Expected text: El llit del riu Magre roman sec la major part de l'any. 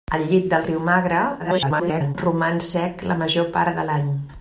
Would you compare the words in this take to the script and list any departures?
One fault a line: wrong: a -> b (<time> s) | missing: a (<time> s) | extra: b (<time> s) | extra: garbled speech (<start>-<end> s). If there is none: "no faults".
extra: garbled speech (1.4-2.2 s)